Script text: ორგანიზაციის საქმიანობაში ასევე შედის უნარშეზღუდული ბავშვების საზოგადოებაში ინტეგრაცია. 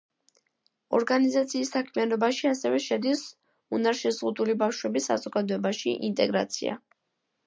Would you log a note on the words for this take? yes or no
no